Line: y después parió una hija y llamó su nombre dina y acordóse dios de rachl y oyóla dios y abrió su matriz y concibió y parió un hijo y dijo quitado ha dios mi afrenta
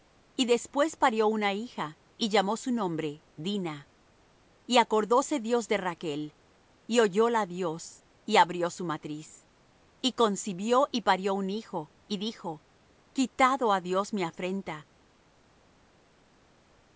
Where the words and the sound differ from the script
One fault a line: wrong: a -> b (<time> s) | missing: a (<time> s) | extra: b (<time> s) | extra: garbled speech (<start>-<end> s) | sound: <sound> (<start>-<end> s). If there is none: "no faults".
no faults